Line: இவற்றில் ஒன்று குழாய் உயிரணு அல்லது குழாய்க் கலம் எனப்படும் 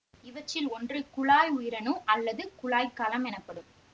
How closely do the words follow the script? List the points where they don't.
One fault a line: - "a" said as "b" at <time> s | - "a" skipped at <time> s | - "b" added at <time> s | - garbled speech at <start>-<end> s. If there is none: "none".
none